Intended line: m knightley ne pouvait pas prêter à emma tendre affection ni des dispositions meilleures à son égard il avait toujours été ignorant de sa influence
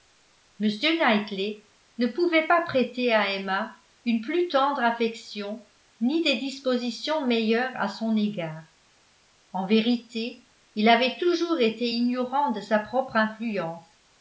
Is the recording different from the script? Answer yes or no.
yes